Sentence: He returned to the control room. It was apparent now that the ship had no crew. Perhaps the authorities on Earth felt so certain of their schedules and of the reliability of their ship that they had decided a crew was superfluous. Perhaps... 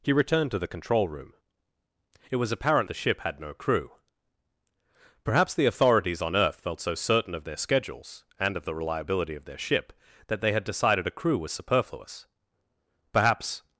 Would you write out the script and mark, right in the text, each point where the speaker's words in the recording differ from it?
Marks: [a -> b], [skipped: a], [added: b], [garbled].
He returned to the control room. It was apparent [skipped: now that] the ship had no crew. Perhaps the authorities on Earth felt so certain of their schedules and of the reliability of their ship that they had decided a crew was superfluous. Perhaps...